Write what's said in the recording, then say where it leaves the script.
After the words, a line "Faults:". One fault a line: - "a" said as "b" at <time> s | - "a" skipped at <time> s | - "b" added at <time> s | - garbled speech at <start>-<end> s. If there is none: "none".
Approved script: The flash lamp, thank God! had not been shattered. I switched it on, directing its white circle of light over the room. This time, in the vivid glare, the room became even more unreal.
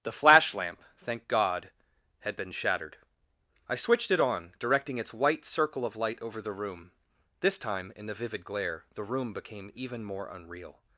The flash lamp, thank God! had been shattered. I switched it on, directing its white circle of light over the room. This time, in the vivid glare, the room became even more unreal.
Faults:
- "not" skipped at 2.4 s